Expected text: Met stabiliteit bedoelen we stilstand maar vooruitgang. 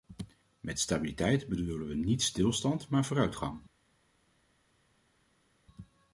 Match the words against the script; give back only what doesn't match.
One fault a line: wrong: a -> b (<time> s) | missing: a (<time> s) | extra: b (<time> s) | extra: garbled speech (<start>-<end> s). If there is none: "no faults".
extra: niet (1.9 s)